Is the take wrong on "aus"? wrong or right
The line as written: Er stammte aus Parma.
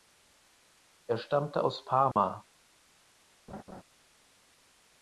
right